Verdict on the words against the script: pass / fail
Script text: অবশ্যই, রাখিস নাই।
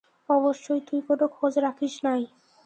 fail